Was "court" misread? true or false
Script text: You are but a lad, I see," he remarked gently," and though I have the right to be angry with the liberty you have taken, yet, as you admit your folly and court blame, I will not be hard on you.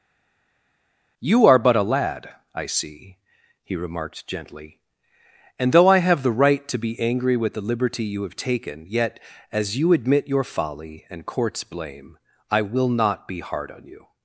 true